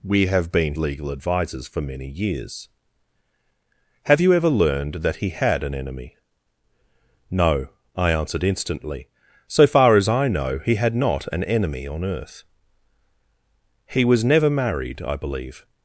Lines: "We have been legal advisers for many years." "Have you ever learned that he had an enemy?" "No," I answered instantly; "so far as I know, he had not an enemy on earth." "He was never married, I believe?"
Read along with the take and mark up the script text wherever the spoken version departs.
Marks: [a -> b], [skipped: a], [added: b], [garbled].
"We have been legal advisers for many years." "Have you ever learned that he had an enemy?" "No," I answered instantly; "so far as I know, he had not an enemy on earth." "He was never married, I believe?"